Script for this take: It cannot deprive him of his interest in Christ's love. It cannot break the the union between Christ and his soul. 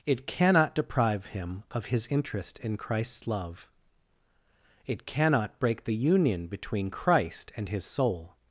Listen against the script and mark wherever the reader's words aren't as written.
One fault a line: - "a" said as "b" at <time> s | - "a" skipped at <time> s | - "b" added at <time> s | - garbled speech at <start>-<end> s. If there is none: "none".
- "the" skipped at 6.0 s